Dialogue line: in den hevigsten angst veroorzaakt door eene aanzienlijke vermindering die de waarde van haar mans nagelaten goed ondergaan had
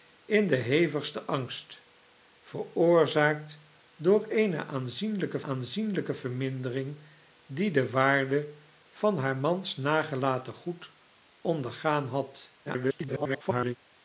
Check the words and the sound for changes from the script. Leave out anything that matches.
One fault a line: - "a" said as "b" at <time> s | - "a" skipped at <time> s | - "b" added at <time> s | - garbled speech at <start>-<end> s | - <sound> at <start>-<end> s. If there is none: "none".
- "aanzienlijke" added at 5.4 s
- garbled speech at 12.7-13.8 s